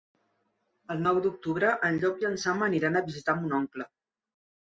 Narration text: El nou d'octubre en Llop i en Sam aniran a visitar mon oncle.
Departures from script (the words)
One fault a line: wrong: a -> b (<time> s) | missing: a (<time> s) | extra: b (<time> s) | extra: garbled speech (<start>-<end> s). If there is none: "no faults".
no faults